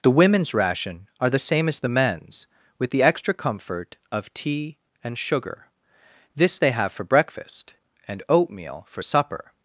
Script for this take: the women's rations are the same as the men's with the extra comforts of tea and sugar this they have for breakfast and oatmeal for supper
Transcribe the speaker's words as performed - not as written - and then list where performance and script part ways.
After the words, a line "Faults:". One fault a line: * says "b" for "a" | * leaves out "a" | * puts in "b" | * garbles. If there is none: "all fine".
the women's ration are the same as the men's with the extra comfort of tea and sugar this they have for breakfast and oatmeal for supper
Faults:
* says "ration" for "rations"
* says "comfort" for "comforts"